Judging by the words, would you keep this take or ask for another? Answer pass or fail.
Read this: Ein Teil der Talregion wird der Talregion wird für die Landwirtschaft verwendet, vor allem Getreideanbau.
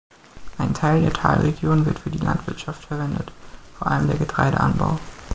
fail